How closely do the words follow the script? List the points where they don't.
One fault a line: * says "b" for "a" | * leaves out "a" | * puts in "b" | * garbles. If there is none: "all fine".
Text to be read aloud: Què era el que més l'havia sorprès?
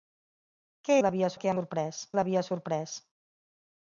* says "l'havia" for "era"
* says "sorprès" for "més"